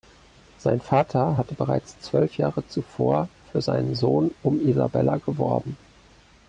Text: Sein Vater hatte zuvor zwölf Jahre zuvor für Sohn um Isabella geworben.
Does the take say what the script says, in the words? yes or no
no